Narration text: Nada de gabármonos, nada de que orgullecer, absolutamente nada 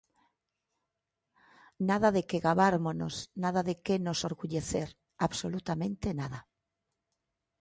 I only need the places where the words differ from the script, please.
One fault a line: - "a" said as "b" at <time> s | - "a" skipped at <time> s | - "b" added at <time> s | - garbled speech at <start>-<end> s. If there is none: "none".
- "que" added at 2.3 s
- "nos" added at 4.0 s